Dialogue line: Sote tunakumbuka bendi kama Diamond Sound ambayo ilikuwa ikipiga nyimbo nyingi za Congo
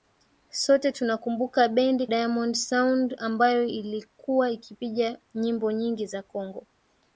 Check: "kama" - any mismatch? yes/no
yes